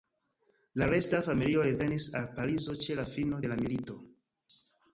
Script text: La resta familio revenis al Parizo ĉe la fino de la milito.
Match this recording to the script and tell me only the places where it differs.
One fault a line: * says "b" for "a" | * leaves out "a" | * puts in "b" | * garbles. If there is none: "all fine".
all fine